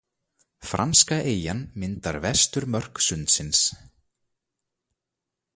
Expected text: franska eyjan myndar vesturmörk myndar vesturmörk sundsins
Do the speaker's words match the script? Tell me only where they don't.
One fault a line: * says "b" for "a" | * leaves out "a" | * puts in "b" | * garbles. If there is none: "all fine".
* leaves out "myndar vesturmörk"